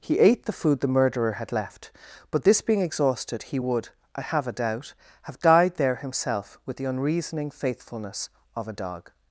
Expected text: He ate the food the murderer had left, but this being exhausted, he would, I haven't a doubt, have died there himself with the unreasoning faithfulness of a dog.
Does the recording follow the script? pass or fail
fail